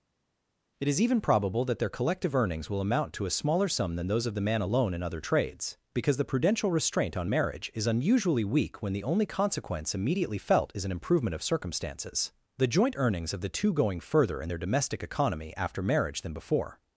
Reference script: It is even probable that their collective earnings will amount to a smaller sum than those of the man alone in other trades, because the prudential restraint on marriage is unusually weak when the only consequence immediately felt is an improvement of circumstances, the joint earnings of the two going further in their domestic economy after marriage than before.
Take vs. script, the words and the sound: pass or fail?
pass